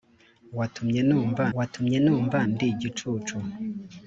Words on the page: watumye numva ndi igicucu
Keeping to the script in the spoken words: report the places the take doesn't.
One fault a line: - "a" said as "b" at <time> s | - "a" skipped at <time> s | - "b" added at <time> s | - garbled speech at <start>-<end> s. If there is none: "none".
- "watumye numva" added at 1.6 s